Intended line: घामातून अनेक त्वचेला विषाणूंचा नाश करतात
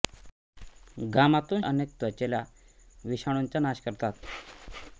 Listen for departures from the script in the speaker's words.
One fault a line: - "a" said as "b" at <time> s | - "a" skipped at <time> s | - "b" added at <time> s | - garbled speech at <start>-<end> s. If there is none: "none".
none